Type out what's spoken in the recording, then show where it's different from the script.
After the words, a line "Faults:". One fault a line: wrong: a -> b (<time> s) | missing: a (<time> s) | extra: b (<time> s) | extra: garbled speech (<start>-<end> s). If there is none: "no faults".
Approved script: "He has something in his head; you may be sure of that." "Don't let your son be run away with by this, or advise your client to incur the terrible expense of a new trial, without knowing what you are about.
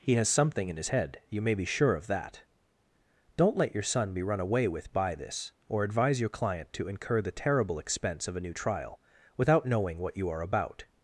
"He has something in his head; you may be sure of that." "Don't let your son be run away with by this, or advise your client to incur the terrible expense of a new trial, without knowing what you are about.
Faults:
no faults